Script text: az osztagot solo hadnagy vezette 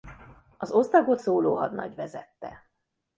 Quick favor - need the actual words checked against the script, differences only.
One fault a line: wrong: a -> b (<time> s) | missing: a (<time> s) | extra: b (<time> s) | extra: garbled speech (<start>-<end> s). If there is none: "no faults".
no faults